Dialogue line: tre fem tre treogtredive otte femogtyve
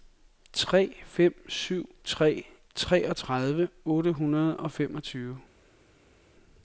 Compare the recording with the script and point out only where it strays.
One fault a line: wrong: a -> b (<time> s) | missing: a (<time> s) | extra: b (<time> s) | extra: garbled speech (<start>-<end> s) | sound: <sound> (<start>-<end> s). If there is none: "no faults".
extra: syv (1.5 s)
extra: hundrede og (4.1 s)